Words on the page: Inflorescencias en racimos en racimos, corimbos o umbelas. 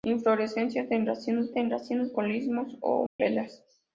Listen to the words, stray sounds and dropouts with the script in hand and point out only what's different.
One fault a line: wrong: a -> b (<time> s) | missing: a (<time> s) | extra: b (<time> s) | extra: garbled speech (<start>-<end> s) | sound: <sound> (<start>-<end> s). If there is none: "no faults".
sound: dropout (3.1-3.2 s)